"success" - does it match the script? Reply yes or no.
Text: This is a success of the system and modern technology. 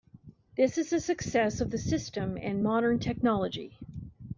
yes